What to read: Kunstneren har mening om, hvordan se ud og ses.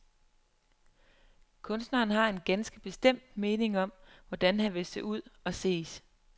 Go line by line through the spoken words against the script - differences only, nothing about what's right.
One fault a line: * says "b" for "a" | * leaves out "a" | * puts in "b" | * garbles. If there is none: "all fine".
* puts in "en ganske bestemt"
* puts in "han vil"